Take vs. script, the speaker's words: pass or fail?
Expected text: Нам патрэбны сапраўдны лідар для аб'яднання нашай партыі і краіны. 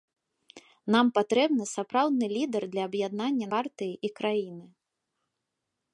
fail